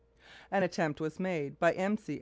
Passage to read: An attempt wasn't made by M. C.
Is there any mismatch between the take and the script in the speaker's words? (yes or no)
yes